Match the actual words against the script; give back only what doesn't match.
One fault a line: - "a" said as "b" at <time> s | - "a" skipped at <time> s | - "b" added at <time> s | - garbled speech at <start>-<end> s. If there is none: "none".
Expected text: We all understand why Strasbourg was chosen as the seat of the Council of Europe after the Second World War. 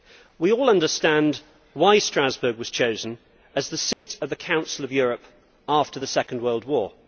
none